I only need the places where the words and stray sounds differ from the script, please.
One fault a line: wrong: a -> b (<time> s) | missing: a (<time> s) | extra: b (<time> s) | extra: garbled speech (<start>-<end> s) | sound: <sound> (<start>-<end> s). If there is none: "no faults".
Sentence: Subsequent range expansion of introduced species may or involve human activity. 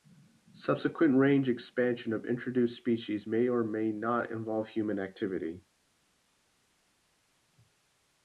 extra: may not (3.6 s)